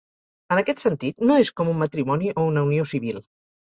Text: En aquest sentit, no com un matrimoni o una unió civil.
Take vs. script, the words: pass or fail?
fail